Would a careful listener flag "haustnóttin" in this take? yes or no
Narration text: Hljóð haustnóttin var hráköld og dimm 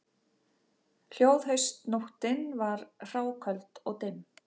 no